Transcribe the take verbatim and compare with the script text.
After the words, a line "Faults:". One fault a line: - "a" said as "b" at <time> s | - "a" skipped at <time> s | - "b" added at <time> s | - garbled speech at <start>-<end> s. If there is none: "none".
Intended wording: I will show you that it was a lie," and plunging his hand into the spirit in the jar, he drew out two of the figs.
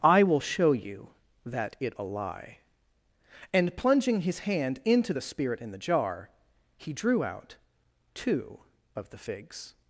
I will show you that it a lie," and plunging his hand into the spirit in the jar, he drew out two of the figs.
Faults:
- "was" skipped at 1.9 s